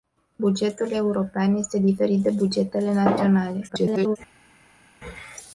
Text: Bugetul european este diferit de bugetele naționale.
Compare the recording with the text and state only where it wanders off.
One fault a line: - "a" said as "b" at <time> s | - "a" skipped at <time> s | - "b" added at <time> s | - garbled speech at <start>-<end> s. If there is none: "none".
- garbled speech at 3.7-4.2 s